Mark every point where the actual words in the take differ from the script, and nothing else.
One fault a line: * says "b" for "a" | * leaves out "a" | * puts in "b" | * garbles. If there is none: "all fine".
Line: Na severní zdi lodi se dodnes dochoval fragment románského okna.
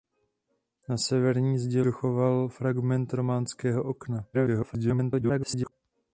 * leaves out "lodi se dodnes"
* garbles